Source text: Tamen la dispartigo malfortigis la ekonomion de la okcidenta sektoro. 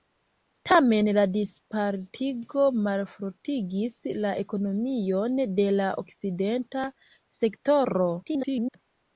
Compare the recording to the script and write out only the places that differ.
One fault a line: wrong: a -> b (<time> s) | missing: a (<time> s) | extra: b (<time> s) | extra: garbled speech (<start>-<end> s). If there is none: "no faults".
extra: garbled speech (8.2-8.8 s)